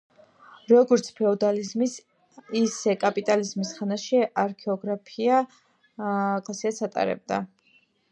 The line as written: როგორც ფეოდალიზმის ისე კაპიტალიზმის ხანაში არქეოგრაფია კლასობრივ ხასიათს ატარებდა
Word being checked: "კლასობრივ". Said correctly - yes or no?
no